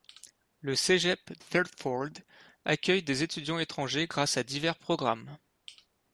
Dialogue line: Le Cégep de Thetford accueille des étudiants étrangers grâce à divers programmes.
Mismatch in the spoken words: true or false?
true